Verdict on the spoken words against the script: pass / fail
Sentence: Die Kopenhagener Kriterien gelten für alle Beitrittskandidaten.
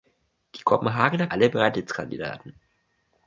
fail